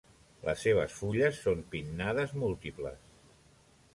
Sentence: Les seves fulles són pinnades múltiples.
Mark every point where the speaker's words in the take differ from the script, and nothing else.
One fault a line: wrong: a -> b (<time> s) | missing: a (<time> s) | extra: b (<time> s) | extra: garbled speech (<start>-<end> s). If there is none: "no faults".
no faults